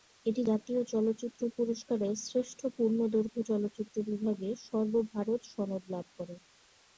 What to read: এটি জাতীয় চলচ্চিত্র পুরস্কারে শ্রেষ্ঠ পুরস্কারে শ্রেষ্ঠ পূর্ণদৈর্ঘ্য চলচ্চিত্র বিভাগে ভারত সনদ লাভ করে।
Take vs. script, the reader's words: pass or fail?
fail